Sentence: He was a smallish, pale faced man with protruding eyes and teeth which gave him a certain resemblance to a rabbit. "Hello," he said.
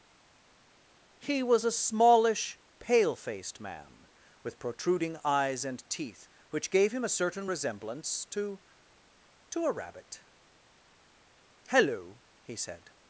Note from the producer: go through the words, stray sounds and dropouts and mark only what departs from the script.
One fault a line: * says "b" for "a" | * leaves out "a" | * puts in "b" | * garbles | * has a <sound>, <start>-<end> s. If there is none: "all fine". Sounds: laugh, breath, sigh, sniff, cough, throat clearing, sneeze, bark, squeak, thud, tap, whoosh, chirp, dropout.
* puts in "to"